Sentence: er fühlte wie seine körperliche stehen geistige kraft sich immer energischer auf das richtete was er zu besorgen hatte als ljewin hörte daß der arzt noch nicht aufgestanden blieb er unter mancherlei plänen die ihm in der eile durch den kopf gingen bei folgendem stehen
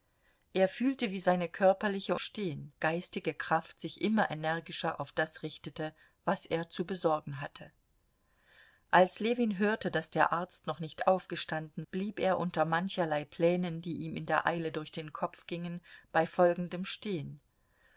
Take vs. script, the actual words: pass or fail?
pass